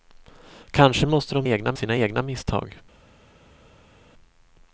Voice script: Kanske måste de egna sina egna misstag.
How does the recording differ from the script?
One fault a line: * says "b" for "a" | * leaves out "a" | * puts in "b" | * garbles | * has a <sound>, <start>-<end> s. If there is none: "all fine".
all fine